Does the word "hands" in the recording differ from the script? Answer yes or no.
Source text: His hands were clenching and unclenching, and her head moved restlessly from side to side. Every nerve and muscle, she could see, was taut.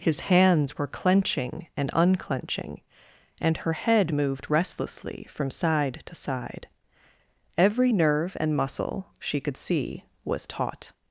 no